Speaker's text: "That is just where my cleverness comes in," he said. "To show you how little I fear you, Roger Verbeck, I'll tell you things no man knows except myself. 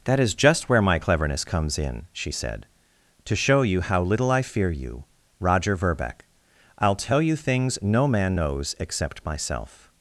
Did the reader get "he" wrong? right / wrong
wrong